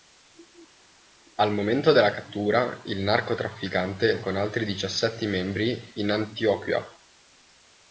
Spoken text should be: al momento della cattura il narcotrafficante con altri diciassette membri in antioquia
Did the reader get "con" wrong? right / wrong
right